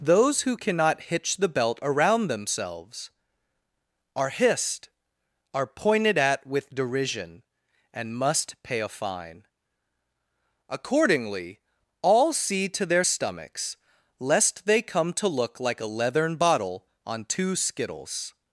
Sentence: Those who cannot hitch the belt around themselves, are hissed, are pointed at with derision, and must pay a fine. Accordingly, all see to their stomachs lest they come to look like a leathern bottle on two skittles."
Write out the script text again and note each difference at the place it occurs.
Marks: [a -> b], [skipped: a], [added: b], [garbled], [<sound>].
Those who cannot hitch the belt around themselves, are hissed, are pointed at with derision, and must pay a fine. Accordingly, all see to their stomachs lest they come to look like a leathern bottle on two skittles."